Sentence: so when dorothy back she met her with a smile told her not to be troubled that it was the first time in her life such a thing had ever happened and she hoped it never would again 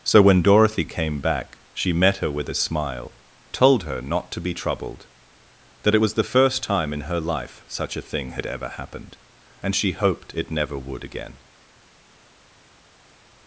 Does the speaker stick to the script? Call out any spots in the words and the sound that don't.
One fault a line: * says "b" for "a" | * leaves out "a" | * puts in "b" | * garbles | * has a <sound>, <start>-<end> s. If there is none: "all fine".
* puts in "came"